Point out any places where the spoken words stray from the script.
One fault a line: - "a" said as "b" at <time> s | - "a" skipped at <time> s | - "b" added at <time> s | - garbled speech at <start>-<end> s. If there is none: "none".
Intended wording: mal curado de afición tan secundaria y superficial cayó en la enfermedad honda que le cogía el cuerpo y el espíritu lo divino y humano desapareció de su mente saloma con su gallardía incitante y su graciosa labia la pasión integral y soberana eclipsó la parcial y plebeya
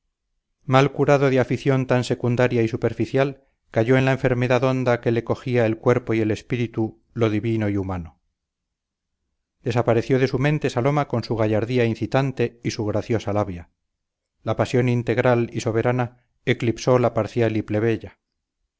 none